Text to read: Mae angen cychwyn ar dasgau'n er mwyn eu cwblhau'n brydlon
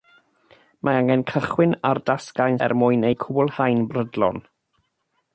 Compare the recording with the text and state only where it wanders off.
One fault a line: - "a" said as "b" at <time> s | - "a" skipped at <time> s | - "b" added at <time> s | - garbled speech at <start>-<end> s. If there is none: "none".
none